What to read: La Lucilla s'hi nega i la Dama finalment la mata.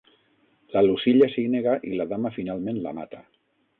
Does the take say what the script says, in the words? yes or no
yes